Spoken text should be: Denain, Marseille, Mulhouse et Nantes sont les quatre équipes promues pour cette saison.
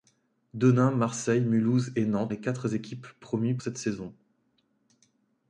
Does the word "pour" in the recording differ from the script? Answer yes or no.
yes